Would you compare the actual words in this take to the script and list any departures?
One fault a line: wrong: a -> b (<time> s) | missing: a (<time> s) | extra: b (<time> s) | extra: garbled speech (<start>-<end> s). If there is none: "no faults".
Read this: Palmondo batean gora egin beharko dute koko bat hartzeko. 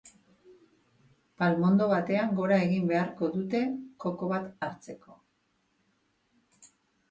no faults